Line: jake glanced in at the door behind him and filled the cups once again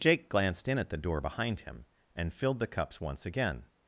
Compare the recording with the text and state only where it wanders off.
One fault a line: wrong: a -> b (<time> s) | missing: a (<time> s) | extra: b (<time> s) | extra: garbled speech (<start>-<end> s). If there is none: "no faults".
no faults